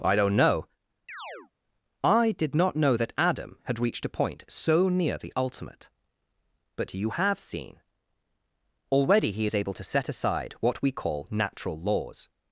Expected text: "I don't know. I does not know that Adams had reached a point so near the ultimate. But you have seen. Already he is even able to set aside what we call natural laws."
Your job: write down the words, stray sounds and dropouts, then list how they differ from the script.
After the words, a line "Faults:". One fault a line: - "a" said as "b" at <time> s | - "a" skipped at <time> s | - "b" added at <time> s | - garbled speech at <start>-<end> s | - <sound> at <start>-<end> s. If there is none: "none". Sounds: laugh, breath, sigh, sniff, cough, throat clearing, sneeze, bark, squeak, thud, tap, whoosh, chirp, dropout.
"I don't know. I did not know that Adam had reached a point so near the ultimate. But you have seen. Already he is able to set aside what we call natural laws."
Faults:
- chirp at 1.1-1.5 s
- "does" said as "did" at 2.3 s
- "Adams" said as "Adam" at 3.2 s
- "even" skipped at 9.5 s